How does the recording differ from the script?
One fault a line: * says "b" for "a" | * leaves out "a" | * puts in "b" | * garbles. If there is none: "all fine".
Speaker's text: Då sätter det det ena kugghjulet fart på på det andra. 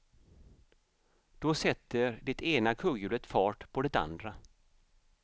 * leaves out "det"
* leaves out "på"